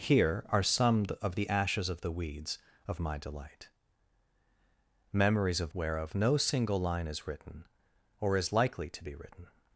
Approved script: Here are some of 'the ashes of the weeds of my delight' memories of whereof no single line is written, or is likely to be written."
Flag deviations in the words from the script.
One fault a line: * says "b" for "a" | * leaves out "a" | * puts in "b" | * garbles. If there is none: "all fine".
all fine